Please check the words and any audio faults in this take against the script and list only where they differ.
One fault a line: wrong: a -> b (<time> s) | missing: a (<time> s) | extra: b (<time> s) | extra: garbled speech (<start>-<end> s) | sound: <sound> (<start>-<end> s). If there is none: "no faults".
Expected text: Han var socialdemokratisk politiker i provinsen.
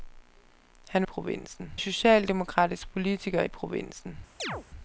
wrong: var -> provinsen (1.0 s)
sound: chirp (4.4-4.6 s)